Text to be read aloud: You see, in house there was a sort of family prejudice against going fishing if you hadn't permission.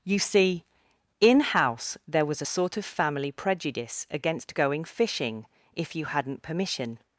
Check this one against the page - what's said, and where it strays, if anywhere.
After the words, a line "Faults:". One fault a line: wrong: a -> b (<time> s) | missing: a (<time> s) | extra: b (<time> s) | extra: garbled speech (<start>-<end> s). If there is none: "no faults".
You see, in house there was a sort of family prejudice against going fishing if you hadn't permission.
Faults:
no faults